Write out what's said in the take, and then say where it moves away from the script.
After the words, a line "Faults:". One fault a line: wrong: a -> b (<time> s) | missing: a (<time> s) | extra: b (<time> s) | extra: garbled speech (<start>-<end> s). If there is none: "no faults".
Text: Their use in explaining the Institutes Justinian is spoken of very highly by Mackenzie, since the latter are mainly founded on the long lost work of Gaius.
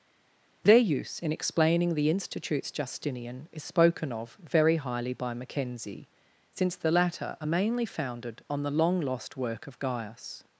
Their use in explaining the Institutes Justinian is spoken of very highly by Mackenzie, since the latter are mainly founded on the long lost work of Gaius.
Faults:
no faults